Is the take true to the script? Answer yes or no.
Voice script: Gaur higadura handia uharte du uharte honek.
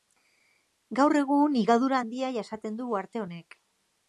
no